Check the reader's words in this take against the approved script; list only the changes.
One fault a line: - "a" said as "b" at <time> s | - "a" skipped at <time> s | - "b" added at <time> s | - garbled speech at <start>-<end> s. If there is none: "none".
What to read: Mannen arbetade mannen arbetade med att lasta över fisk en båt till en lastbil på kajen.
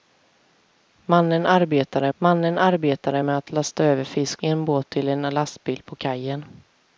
none